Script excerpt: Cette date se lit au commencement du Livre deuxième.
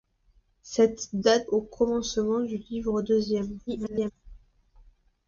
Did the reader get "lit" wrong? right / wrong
wrong